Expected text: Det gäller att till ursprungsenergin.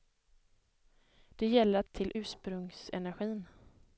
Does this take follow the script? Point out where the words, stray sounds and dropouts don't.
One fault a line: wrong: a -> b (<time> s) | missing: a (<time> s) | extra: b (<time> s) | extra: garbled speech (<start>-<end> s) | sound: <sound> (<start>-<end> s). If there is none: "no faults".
no faults